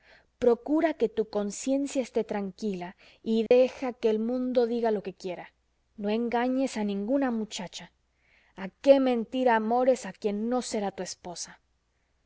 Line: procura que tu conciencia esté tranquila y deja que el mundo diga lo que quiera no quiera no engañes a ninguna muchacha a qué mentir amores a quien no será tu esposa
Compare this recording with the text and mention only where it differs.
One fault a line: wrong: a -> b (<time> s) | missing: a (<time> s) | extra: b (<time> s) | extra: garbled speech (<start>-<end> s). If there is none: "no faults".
missing: quiera no (6.1 s)